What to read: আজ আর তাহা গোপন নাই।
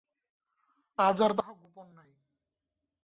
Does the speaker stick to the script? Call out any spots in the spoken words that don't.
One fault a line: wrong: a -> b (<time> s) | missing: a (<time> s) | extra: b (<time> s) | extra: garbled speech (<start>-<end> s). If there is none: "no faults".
no faults